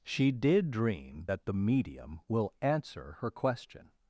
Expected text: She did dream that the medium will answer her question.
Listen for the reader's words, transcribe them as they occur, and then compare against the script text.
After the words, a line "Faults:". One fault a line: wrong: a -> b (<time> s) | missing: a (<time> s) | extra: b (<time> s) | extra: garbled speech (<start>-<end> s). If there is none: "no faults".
She did dream that the medium will answer her question.
Faults:
no faults